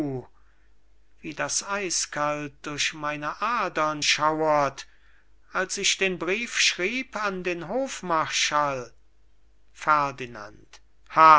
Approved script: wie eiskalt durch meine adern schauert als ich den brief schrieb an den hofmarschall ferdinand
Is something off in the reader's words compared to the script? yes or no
yes